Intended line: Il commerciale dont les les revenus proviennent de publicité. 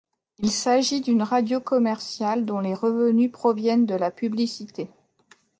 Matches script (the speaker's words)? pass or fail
fail